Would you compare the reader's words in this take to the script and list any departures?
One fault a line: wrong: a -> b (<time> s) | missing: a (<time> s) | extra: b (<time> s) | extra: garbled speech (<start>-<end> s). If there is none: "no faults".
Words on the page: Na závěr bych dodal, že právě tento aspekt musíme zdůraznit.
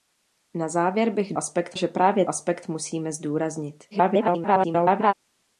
wrong: dodal -> aspekt (1.4 s)
missing: tento (2.2 s)
extra: garbled speech (3.9-5.1 s)